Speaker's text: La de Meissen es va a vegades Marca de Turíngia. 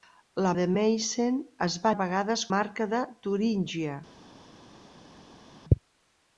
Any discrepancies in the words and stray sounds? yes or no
no